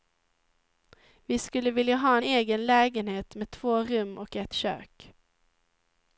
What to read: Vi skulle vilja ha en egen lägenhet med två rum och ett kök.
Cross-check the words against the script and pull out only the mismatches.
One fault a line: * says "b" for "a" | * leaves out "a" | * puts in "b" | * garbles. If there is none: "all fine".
all fine